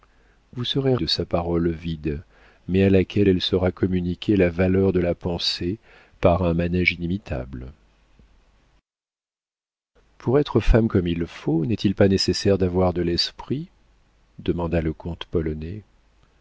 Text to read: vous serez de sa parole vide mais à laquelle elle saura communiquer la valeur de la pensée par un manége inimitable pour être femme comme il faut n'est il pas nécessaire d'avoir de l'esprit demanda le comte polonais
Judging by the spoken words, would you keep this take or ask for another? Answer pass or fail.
pass